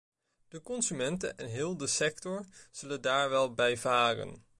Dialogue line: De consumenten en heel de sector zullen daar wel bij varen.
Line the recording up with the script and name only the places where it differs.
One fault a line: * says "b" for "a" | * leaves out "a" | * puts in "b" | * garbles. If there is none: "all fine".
all fine